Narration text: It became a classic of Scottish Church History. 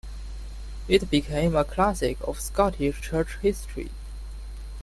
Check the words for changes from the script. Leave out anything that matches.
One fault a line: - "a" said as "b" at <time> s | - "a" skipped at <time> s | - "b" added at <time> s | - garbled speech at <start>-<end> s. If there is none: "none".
none